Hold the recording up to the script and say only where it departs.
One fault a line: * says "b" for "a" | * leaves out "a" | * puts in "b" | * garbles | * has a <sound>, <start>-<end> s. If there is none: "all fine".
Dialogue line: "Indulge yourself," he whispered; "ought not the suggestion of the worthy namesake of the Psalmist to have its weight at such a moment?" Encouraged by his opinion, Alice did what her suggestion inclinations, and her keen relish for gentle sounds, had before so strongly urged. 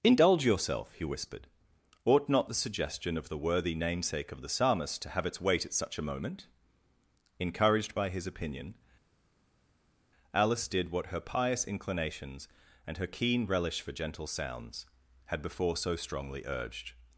* says "pious" for "suggestion"